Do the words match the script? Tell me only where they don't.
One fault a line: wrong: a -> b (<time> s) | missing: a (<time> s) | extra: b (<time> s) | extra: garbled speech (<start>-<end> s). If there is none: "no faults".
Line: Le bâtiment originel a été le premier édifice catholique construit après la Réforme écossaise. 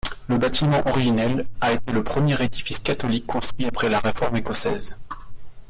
no faults